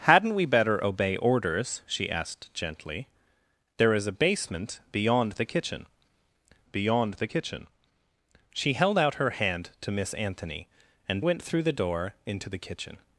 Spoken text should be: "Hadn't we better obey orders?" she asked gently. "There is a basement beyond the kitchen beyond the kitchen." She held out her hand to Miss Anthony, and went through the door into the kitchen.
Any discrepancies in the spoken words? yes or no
no